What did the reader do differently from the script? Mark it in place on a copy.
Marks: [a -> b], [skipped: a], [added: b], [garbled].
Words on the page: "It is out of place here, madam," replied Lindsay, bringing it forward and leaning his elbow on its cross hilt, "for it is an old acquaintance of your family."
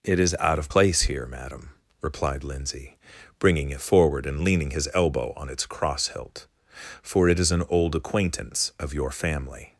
"It is out of place here, madam," replied Lindsay, bringing it forward and leaning his elbow on its cross hilt, "for it is an old acquaintance of your family."